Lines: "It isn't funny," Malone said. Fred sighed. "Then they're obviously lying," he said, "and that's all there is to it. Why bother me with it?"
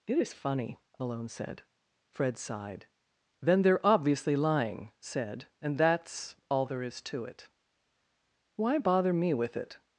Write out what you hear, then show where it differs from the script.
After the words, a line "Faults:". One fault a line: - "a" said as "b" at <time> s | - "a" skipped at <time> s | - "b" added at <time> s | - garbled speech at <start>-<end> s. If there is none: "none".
"It is funny," Malone said. Fred sighed. "Then they're obviously lying," said, "and that's all there is to it. Why bother me with it?"
Faults:
- "isn't" said as "is" at 0.2 s
- "he" skipped at 4.9 s